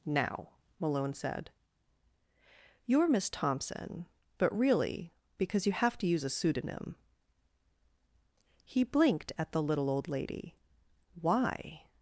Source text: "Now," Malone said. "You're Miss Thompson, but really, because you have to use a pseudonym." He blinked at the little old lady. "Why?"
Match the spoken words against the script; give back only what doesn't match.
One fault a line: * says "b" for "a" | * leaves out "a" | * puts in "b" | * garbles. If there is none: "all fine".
all fine